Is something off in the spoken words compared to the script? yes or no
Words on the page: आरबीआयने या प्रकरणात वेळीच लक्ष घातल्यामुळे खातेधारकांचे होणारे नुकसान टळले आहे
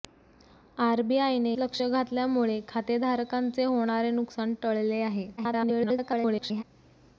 yes